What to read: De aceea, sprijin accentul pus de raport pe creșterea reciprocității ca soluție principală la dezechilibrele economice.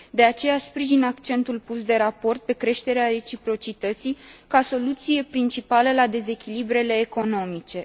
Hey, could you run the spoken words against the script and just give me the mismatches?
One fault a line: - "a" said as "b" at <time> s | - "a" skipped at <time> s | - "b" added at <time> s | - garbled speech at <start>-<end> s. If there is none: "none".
none